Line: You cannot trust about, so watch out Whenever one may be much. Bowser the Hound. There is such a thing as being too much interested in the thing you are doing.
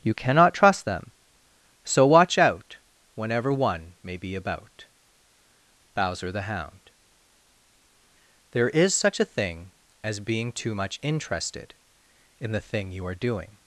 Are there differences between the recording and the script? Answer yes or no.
yes